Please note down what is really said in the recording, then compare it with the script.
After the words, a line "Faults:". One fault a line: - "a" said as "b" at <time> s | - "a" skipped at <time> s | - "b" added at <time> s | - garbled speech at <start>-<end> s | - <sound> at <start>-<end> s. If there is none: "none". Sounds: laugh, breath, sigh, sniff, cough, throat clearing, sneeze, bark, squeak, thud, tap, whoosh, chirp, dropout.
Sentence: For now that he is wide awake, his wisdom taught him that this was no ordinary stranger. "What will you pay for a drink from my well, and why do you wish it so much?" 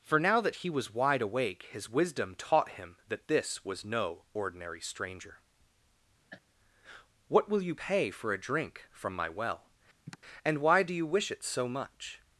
For now that he was wide awake, his wisdom taught him that this was no ordinary stranger. "What will you pay for a drink from my well, and why do you wish it so much?"
Faults:
- "is" said as "was" at 0.7 s
- cough at 6.3-6.4 s
- sigh at 10.1-10.2 s